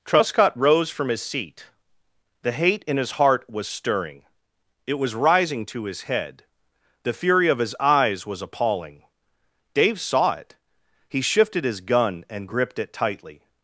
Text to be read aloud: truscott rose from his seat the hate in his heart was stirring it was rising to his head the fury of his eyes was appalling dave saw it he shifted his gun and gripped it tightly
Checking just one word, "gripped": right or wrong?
right